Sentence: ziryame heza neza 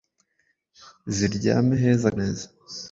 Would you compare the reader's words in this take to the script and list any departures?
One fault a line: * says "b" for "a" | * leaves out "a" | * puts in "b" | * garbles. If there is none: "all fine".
all fine